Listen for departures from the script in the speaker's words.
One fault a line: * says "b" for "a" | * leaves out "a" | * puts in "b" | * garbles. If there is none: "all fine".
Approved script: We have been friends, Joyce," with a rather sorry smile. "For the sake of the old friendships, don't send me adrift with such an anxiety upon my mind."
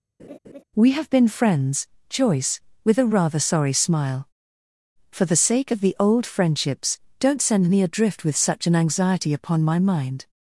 all fine